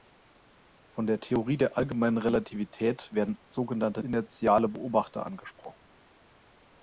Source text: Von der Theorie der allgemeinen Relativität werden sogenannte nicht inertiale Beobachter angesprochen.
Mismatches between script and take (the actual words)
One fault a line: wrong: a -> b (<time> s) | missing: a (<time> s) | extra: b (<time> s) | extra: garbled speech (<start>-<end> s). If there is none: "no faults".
missing: nicht (4.0 s)